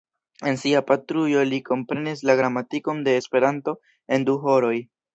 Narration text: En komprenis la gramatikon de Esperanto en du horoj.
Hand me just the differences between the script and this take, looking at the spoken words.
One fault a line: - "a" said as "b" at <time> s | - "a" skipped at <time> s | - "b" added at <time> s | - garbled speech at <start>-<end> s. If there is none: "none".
- "sia patrujo li" added at 0.6 s